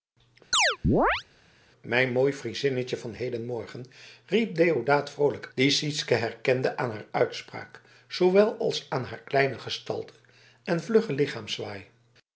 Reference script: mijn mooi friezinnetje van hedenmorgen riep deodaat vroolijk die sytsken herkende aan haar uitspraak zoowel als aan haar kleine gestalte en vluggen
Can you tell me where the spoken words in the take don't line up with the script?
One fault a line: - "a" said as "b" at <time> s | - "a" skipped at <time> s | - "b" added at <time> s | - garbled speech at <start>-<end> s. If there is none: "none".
none